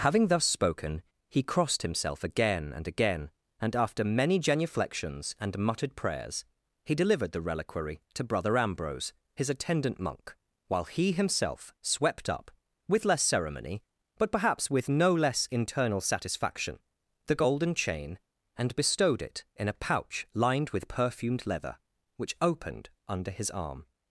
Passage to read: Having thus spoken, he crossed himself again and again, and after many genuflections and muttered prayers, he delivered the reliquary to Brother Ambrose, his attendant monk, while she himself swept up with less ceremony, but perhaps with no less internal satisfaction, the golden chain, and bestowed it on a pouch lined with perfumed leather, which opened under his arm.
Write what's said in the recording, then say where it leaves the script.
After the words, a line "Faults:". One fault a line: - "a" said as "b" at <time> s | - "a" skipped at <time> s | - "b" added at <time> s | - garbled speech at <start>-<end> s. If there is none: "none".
Having thus spoken, he crossed himself again and again, and after many genuflections and muttered prayers, he delivered the reliquary to Brother Ambrose, his attendant monk, while he himself swept up with less ceremony, but perhaps with no less internal satisfaction, the golden chain, and bestowed it in a pouch lined with perfumed leather, which opened under his arm.
Faults:
- "she" said as "he" at 10.8 s
- "on" said as "in" at 19.6 s